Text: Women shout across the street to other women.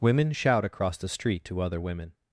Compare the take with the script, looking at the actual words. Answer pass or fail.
pass